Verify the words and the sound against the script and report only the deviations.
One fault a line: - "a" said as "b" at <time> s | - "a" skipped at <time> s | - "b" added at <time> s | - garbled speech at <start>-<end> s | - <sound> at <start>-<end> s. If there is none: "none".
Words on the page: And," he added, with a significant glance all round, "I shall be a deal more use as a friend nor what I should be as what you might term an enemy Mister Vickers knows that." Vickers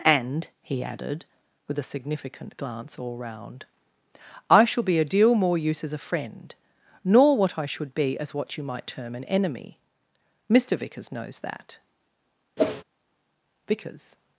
- whoosh at 12.6-12.8 s